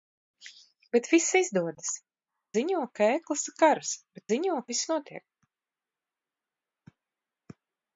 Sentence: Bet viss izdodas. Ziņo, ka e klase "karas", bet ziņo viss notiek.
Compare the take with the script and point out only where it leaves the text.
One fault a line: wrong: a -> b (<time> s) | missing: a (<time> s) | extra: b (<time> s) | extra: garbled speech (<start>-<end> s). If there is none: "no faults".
no faults